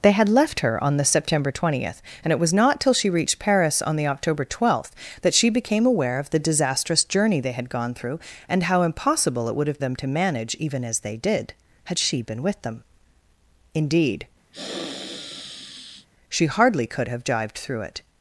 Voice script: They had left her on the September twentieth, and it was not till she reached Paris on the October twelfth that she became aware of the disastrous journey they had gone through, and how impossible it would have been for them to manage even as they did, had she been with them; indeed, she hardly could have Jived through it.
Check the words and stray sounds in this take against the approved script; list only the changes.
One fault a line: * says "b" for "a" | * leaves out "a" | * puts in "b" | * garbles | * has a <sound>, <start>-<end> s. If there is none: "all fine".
* leaves out "been for"
* has a sniff, 14.5-16.1 s